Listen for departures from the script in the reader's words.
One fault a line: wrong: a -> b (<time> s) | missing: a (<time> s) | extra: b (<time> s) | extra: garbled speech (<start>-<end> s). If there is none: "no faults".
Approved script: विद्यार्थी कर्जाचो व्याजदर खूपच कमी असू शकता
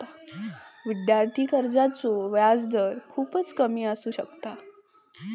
no faults